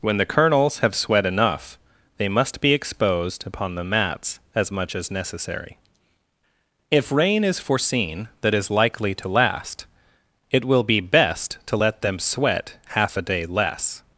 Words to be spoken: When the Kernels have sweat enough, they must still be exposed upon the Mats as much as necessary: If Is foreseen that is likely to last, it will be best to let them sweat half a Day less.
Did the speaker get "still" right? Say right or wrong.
wrong